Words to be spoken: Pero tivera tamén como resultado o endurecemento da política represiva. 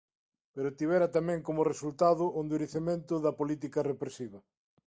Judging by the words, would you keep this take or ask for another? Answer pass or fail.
pass